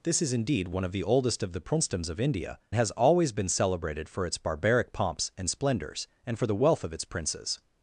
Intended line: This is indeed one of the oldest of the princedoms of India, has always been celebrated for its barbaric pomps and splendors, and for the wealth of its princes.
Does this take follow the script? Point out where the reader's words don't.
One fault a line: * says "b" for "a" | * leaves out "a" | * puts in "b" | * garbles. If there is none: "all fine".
all fine